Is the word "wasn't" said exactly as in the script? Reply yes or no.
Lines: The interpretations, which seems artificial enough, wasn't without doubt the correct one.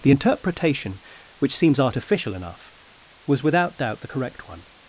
no